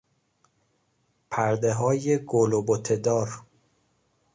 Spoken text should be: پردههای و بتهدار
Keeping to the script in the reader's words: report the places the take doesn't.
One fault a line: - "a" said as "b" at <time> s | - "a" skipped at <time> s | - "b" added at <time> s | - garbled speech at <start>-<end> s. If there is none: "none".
- "گل" added at 2.2 s